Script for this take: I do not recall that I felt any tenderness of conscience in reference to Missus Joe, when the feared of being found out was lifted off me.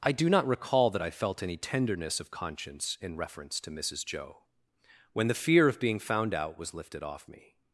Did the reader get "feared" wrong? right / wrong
wrong